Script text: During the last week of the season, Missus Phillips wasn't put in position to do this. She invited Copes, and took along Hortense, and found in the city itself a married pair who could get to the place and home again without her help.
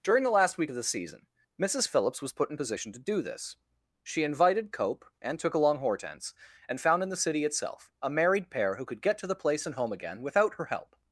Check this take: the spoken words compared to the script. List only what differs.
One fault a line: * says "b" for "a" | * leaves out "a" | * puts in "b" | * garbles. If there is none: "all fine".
* says "was" for "wasn't"
* says "Cope" for "Copes"